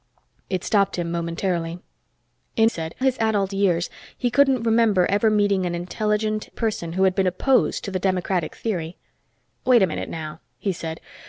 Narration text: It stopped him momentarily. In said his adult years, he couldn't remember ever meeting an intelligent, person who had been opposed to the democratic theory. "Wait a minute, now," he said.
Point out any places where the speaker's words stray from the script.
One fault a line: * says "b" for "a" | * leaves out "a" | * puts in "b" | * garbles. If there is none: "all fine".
all fine